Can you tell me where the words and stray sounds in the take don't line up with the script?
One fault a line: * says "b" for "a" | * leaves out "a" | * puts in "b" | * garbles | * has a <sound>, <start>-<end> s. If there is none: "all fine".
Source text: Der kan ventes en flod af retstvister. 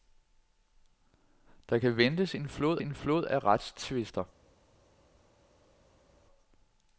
* puts in "en flod"